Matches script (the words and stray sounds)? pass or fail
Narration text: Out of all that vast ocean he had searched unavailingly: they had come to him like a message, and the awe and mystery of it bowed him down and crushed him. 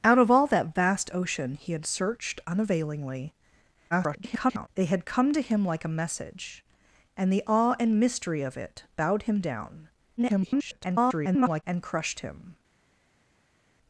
fail